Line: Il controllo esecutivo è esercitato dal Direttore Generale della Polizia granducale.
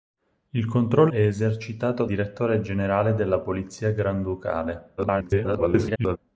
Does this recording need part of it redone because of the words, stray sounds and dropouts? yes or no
yes